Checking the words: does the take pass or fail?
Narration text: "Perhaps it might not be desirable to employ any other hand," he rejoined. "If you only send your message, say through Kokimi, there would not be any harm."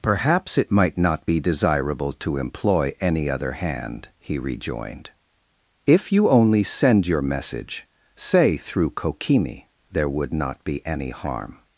pass